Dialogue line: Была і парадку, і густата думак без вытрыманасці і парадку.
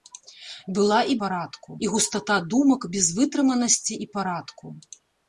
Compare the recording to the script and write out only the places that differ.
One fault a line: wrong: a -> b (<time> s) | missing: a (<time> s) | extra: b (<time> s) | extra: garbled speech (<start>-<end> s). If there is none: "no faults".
no faults